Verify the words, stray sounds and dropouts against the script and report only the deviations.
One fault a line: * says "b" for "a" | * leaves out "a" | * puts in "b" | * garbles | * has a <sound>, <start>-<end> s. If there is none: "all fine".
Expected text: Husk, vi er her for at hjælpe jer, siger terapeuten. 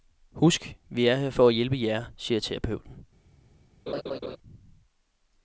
* has a laugh, 3.9-4.4 s